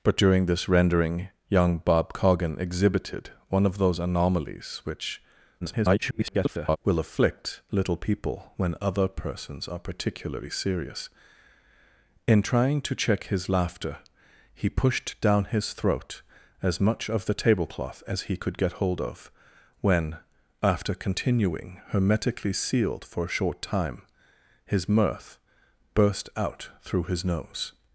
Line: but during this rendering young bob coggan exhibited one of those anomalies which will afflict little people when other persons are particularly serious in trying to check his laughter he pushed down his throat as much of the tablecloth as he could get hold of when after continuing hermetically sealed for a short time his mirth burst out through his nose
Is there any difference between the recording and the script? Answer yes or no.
yes